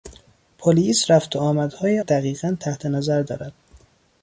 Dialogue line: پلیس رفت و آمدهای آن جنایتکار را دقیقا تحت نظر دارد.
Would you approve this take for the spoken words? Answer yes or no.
no